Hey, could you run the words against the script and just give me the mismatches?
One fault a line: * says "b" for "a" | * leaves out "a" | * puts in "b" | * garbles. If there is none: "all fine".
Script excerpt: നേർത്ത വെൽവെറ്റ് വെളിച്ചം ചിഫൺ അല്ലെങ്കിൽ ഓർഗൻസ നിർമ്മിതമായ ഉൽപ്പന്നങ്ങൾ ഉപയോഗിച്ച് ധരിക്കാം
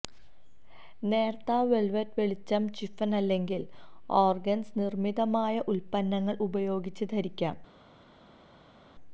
all fine